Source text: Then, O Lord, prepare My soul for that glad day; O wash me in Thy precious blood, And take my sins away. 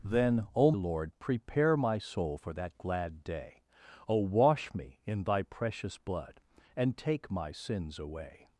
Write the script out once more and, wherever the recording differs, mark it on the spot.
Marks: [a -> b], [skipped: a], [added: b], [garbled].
Then, O Lord, prepare My soul for that glad day; O wash me in Thy precious blood, And take my sins away.